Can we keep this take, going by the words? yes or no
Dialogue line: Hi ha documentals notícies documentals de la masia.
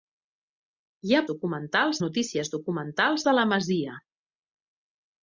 yes